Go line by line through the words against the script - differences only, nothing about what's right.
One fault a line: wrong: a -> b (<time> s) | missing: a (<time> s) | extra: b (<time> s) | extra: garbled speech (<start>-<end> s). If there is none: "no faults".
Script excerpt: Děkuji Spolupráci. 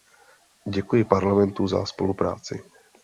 extra: Parlamentu za (1.0 s)